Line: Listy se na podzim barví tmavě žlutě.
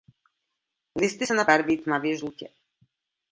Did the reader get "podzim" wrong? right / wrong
wrong